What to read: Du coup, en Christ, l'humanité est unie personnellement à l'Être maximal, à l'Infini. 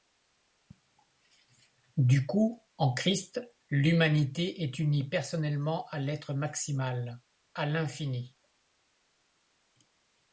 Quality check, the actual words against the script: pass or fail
pass